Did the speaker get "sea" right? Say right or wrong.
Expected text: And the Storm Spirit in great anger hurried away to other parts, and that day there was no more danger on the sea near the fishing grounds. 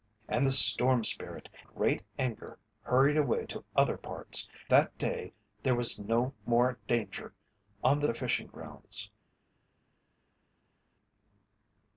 wrong